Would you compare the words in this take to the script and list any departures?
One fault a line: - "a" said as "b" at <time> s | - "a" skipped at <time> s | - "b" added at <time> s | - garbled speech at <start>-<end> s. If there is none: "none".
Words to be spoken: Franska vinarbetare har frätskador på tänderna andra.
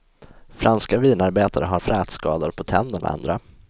none